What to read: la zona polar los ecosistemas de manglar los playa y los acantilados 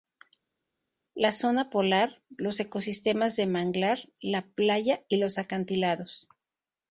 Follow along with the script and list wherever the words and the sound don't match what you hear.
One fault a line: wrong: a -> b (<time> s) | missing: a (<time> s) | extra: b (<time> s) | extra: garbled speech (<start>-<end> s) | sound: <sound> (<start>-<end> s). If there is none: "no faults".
wrong: los -> la (4.2 s)